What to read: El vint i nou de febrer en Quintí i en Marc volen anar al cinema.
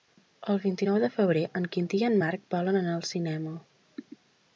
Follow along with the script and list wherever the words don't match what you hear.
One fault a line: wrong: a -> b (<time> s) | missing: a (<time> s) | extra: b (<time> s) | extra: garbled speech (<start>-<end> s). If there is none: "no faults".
no faults